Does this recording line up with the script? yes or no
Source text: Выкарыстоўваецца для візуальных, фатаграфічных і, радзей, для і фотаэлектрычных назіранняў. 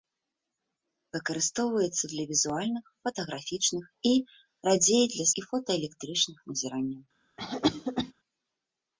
yes